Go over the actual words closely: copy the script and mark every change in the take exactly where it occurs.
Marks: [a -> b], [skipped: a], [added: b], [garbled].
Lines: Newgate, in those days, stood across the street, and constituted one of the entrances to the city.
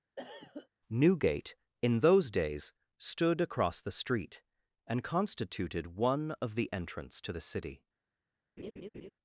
Newgate, in those days, stood across the street, and constituted one of the [entrances -> entrance] to the city.